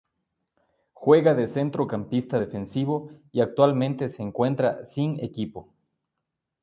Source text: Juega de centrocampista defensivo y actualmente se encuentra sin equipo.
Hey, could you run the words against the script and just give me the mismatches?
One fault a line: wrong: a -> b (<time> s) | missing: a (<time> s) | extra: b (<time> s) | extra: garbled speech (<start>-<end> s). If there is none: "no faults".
no faults